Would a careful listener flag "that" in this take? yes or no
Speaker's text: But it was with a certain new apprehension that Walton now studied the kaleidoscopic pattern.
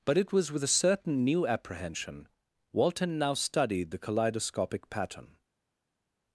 yes